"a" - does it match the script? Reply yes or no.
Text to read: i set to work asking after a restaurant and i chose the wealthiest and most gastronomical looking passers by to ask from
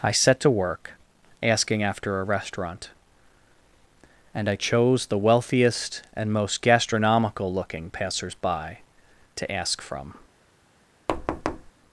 yes